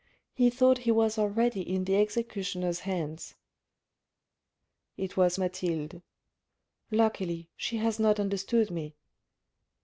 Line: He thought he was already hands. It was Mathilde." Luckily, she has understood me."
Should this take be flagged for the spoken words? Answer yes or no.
yes